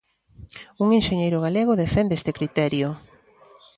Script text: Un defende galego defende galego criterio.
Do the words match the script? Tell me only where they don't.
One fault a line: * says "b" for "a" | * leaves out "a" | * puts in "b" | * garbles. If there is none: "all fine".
* says "enxeñeiro" for "defende"
* says "este" for "galego"